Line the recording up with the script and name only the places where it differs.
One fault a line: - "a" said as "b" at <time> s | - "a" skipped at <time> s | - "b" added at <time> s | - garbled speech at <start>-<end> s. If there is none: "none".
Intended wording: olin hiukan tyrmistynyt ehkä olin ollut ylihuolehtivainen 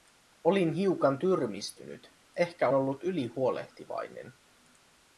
- "olin" skipped at 2.7 s